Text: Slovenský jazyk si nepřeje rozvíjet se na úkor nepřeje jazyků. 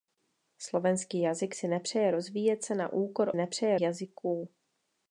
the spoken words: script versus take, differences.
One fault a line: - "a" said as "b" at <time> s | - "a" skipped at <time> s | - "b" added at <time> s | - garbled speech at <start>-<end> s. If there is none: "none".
none